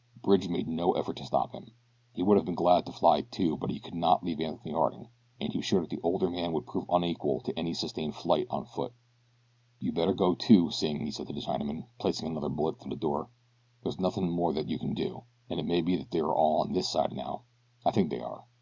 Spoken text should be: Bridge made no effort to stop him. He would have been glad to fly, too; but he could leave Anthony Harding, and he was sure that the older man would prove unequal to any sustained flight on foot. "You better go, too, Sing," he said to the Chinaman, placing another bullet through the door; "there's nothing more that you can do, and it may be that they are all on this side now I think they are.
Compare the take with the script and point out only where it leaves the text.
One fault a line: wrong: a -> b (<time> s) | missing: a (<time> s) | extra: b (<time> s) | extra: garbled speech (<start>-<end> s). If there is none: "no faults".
extra: not (3.9 s)